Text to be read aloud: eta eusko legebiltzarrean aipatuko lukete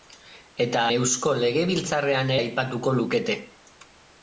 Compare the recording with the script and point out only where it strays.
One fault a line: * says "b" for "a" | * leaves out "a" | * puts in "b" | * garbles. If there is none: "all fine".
all fine